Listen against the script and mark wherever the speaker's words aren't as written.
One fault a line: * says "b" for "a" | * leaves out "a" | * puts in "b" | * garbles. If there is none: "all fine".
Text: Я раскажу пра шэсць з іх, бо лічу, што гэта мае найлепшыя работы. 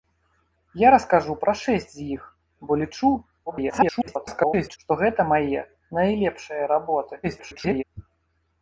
* garbles
* garbles